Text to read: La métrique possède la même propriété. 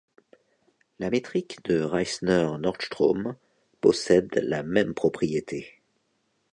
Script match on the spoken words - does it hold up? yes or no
no